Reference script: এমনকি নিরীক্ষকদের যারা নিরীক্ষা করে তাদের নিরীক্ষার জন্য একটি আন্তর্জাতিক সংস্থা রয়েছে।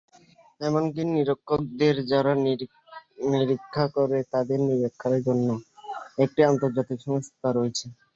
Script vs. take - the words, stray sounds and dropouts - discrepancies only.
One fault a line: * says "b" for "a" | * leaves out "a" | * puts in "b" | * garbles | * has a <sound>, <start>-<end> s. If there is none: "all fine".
all fine